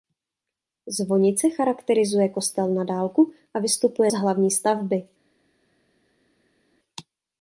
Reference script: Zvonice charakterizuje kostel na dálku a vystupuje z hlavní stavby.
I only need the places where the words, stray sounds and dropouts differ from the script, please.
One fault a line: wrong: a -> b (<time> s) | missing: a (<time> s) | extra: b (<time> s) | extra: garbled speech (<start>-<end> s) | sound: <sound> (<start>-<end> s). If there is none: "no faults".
no faults